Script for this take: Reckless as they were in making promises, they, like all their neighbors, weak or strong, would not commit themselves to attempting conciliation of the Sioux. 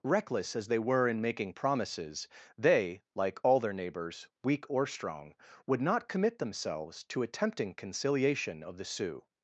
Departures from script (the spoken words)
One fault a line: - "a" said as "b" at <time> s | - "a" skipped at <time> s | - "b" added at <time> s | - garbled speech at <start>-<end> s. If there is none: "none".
none